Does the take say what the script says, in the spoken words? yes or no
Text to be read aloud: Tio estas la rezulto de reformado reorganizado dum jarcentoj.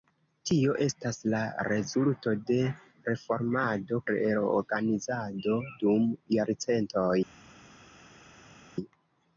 yes